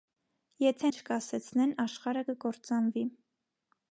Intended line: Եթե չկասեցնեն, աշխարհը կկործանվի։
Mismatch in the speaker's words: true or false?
false